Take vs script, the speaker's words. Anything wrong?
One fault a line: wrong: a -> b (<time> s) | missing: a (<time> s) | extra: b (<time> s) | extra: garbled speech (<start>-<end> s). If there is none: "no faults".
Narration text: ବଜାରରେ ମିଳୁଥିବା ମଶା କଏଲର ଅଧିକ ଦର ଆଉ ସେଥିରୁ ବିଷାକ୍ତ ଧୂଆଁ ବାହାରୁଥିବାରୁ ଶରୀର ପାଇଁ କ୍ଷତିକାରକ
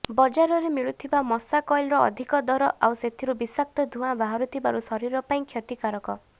no faults